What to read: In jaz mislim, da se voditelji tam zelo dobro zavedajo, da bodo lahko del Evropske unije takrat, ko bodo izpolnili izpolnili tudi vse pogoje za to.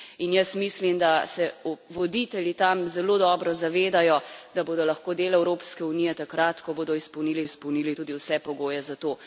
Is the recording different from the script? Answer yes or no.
no